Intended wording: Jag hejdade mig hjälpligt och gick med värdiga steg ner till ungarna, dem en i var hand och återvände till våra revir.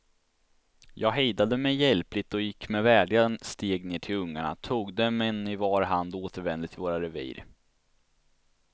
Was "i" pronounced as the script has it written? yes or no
yes